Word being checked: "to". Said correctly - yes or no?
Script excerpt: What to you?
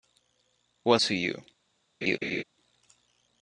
yes